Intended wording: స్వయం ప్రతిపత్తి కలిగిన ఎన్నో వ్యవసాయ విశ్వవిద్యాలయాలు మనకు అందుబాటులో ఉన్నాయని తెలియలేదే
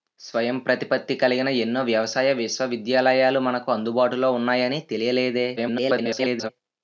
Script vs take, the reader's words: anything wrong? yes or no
yes